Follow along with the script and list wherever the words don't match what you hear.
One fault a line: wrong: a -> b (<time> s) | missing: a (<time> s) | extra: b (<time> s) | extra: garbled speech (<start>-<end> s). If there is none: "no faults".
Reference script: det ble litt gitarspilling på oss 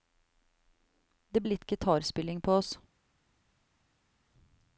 missing: ble (1.4 s)